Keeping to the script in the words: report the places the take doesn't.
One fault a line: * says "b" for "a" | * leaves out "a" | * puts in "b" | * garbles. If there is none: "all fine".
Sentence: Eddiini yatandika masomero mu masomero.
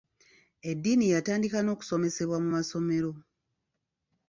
* says "n'okusomesebwa" for "masomero"